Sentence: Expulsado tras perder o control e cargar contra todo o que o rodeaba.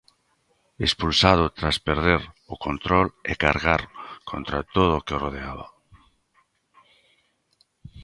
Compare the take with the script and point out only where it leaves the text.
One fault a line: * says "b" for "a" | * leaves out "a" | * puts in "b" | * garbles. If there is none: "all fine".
all fine